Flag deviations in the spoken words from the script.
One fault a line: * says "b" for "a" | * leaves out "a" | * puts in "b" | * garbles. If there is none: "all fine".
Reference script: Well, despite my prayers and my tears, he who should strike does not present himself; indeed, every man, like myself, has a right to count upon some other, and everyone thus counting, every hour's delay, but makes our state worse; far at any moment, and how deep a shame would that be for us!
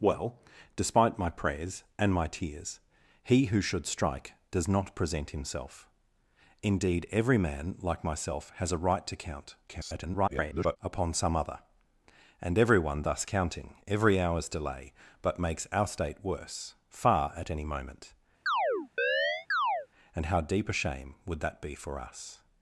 * garbles